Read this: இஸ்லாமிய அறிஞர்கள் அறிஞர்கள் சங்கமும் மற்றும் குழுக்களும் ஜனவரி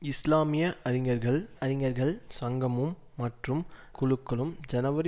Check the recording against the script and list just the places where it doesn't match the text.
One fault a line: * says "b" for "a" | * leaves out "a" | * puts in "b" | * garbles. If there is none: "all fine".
all fine